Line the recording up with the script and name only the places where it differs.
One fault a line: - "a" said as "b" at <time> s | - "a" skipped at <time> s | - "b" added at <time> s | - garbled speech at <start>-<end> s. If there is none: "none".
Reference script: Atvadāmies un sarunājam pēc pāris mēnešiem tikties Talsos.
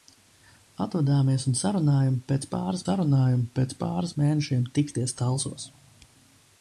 - "sarunājam pēc pāris" added at 2.8 s